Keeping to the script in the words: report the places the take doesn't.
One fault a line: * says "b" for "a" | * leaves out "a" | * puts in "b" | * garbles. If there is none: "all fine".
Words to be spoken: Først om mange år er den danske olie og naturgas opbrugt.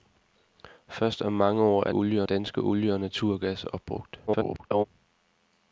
* says "olie" for "den"
* garbles